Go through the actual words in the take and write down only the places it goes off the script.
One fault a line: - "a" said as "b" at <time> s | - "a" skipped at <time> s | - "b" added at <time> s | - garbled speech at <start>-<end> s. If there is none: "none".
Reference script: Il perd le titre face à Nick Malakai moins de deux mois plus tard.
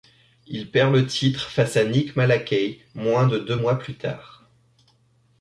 none